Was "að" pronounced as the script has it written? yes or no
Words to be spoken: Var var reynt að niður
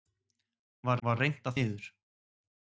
yes